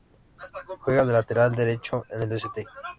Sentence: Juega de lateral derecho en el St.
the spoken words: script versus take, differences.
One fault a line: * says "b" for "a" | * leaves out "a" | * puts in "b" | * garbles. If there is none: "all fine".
all fine